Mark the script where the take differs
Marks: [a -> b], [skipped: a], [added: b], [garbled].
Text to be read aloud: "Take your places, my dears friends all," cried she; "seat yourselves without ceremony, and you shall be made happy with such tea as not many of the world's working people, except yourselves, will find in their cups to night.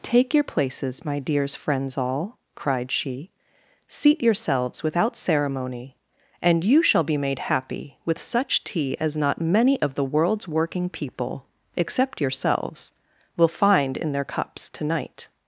"Take your places, my dears friends all," cried she; "seat yourselves without ceremony, and you shall be made happy with such tea as not many of the world's working people, except yourselves, will find in their cups to night.